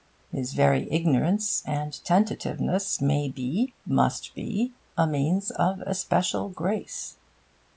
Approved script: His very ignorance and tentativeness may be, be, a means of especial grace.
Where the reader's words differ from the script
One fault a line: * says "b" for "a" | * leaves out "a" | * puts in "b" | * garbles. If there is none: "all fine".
* puts in "must"